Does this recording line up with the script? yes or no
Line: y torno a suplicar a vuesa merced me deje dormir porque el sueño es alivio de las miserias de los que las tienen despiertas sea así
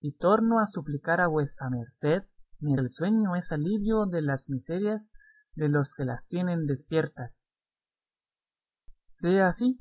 no